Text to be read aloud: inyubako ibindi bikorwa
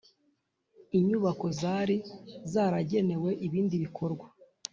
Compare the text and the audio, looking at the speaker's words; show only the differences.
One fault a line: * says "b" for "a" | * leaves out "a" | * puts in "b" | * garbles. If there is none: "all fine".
* puts in "zari zaragenewe"